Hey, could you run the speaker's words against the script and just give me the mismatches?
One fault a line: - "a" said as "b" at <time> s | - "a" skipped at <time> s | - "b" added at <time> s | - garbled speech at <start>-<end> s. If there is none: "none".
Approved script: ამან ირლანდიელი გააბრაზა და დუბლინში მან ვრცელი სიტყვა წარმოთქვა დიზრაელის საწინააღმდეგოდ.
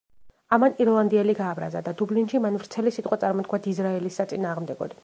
none